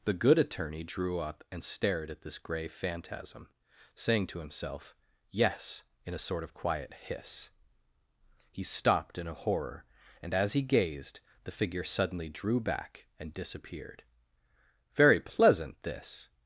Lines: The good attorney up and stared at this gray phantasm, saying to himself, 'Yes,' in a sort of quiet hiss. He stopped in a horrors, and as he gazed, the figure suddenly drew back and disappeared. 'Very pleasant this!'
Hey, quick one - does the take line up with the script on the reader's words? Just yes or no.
no